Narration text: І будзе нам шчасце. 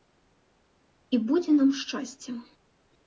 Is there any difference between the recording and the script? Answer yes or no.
no